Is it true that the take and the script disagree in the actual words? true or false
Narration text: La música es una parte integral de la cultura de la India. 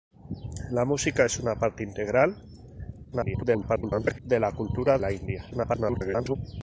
true